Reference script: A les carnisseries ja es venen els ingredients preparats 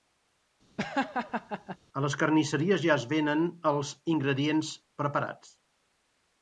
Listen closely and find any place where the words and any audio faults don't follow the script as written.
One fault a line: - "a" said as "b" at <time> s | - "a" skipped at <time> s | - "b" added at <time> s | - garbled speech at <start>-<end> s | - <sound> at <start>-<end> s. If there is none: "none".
- laugh at 0.8-1.8 s